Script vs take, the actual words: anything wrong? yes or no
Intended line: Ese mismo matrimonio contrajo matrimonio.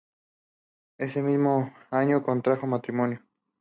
yes